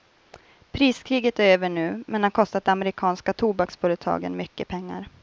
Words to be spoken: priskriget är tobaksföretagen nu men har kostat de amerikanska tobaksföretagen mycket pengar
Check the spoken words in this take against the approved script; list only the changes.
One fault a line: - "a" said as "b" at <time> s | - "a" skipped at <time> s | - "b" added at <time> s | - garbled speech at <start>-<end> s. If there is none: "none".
- "tobaksföretagen" said as "över" at 1.5 s